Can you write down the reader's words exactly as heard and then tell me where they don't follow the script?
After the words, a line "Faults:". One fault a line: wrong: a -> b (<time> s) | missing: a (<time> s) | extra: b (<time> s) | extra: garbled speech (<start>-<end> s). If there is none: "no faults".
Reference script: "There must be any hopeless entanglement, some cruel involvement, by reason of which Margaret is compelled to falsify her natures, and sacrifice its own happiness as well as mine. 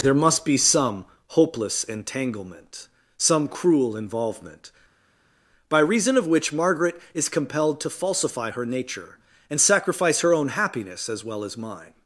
"There must be some hopeless entanglement, some cruel involvement, by reason of which Margaret is compelled to falsify her nature, and sacrifice her own happiness as well as mine.
Faults:
wrong: any -> some (0.6 s)
wrong: natures -> nature (8.7 s)
wrong: its -> her (10.2 s)